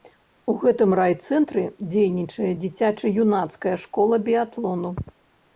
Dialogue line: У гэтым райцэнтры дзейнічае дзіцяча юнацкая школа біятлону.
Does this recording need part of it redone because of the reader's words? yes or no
no